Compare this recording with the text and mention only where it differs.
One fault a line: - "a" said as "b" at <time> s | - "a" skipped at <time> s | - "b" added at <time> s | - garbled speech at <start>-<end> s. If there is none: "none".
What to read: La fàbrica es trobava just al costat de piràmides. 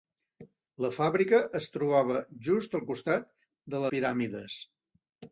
none